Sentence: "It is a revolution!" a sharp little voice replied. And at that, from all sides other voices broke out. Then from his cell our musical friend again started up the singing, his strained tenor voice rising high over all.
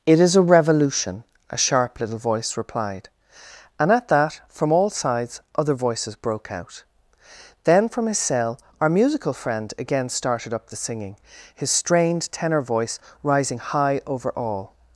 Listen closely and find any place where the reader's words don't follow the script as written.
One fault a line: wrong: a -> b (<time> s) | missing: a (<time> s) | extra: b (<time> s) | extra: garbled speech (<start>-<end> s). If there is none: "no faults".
no faults